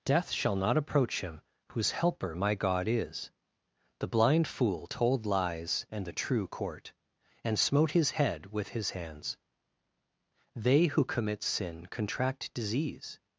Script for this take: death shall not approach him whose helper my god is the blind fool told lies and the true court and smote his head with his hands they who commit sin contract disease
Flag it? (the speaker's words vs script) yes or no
no